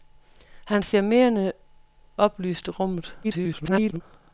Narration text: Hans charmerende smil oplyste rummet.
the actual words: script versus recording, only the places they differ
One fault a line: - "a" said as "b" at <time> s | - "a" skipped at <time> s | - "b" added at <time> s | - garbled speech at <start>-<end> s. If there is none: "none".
- "smil" skipped at 1.5 s
- garbled speech at 3.2-4.0 s